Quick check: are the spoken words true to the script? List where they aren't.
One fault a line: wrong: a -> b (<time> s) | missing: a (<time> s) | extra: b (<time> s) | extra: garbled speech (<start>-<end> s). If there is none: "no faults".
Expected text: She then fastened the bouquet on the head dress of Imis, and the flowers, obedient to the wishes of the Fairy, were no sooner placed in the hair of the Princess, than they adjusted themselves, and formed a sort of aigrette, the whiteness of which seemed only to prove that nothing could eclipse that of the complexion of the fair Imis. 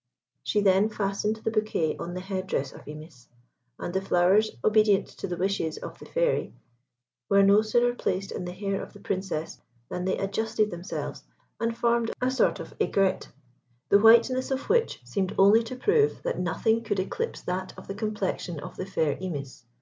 no faults